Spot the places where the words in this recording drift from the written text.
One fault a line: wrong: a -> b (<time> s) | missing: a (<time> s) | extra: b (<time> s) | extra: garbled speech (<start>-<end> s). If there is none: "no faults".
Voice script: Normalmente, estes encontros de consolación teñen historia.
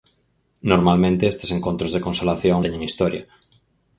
no faults